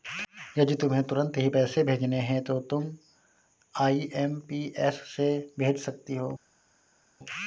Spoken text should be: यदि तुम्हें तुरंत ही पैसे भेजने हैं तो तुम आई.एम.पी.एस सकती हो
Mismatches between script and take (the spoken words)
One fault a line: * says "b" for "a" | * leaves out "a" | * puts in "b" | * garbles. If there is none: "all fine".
* puts in "से भेज"